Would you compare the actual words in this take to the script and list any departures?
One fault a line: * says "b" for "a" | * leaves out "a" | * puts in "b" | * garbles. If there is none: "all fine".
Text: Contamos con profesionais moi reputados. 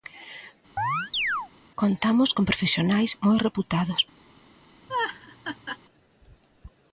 all fine